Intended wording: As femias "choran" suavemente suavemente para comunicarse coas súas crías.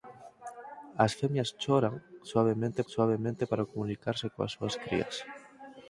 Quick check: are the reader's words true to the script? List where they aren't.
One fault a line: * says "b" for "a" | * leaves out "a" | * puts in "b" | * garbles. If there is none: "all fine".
all fine